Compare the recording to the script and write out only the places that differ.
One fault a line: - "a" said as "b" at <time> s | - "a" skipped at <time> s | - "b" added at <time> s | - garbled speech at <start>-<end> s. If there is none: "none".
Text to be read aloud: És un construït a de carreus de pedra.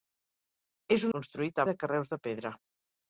none